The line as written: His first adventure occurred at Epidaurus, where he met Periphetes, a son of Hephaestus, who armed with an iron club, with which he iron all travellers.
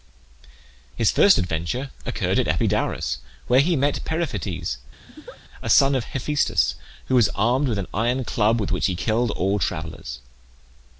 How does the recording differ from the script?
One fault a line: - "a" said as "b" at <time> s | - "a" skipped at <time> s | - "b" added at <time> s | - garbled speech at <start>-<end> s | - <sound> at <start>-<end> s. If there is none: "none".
- laugh at 5.1-5.4 s
- "was" added at 7.2 s
- "iron" said as "killed" at 8.9 s